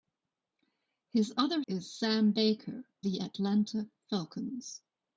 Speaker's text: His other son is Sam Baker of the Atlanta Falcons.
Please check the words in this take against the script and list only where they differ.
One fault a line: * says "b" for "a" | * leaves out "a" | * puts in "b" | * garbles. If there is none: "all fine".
* leaves out "son"
* leaves out "of"